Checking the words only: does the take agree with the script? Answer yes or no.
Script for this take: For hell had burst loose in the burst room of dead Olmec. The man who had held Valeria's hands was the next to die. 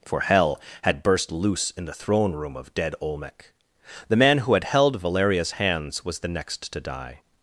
no